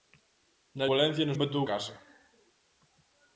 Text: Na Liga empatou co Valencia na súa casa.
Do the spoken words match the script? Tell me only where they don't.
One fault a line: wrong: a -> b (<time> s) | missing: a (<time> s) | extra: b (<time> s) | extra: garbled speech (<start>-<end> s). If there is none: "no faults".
missing: Liga empatou co (0.8 s)
wrong: súa -> empatou (1.3 s)